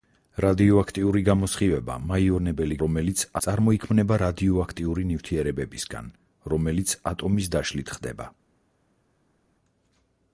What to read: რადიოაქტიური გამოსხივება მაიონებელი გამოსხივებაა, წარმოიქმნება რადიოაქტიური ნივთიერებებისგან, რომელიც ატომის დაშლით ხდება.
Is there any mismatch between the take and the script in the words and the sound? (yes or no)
yes